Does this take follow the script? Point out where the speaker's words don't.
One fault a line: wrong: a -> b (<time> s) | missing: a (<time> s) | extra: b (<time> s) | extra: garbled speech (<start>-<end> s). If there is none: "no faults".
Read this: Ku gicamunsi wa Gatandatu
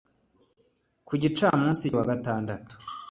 no faults